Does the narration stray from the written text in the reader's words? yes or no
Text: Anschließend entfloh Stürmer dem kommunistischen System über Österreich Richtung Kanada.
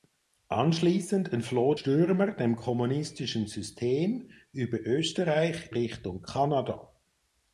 no